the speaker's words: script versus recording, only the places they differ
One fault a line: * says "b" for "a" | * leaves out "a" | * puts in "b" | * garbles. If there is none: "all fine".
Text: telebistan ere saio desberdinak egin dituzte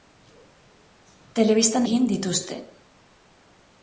* leaves out "ere saio desberdinak"